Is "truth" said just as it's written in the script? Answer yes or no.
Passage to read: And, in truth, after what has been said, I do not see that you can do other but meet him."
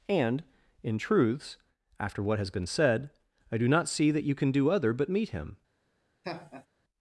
no